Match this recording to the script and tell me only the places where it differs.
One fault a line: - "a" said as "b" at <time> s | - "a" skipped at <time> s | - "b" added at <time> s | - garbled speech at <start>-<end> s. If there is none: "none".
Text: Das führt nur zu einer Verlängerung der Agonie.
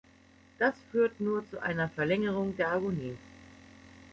none